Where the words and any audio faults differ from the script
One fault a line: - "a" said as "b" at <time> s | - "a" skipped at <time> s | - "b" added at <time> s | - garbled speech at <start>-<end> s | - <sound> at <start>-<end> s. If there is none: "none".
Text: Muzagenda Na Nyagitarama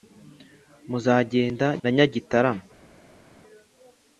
none